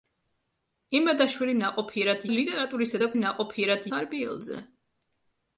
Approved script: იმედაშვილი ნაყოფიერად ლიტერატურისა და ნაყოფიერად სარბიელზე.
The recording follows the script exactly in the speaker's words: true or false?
true